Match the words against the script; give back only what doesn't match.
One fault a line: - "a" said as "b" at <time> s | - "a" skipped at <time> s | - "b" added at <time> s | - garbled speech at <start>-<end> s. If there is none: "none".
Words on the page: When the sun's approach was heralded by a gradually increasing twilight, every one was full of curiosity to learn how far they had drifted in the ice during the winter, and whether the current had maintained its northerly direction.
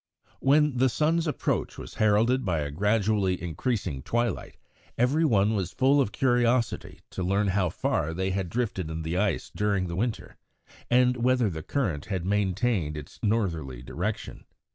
none